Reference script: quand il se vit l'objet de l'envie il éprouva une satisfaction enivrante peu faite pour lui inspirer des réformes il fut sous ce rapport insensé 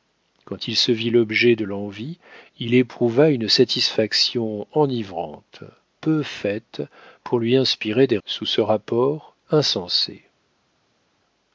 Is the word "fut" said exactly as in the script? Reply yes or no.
no